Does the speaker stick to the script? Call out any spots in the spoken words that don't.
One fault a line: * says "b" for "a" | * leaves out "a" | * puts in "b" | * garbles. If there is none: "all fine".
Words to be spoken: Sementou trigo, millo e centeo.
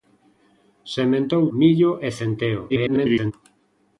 * leaves out "trigo"
* garbles